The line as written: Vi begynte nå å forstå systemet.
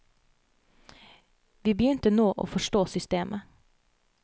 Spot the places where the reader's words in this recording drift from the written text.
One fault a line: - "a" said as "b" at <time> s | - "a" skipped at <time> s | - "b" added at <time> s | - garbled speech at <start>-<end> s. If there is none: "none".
none